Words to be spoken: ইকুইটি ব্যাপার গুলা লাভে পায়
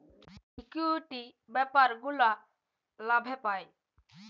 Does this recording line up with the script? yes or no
yes